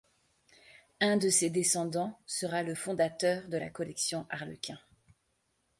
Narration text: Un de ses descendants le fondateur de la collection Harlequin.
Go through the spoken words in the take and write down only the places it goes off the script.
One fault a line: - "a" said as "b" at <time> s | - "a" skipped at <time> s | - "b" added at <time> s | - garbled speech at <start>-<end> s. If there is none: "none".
- "sera" added at 2.2 s